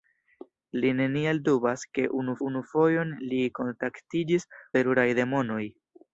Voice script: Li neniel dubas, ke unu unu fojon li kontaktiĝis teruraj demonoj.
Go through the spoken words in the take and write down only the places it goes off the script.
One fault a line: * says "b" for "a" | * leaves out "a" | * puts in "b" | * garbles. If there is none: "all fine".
all fine